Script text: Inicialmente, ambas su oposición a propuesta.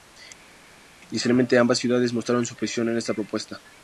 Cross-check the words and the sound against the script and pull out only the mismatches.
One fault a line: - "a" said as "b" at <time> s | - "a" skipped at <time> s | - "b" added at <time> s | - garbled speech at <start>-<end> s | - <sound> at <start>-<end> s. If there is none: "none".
- "ciudades mostraron" added at 1.8 s
- "esta" added at 3.0 s